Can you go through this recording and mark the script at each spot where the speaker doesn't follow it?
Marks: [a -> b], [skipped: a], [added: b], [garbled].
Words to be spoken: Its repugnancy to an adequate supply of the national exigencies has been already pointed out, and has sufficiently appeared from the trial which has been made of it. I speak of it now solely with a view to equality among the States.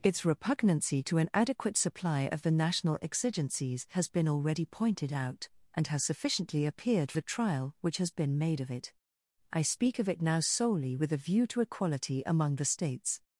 Its repugnancy to an adequate supply of the national exigencies has been already pointed out, and has sufficiently appeared [skipped: from] the trial which has been made of it. I speak of it now solely with a view to equality among the States.